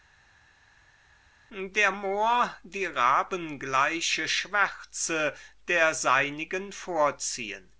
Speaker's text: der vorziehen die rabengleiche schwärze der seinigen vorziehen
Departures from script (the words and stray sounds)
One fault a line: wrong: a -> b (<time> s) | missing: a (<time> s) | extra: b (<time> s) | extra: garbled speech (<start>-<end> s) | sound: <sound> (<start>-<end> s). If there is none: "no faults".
wrong: vorziehen -> mohr (1.9 s)